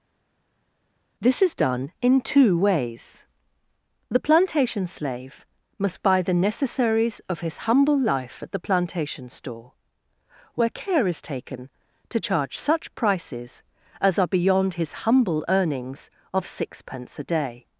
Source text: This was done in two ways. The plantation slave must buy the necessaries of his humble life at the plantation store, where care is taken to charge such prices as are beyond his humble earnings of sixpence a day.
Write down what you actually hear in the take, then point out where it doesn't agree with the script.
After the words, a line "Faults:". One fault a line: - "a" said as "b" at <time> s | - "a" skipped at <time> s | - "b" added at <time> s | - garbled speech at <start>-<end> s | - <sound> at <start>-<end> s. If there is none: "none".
This is done in two ways. The plantation slave must buy the necessaries of his humble life at the plantation store, where care is taken to charge such prices as are beyond his humble earnings of sixpence a day.
Faults:
- "was" said as "is" at 1.4 s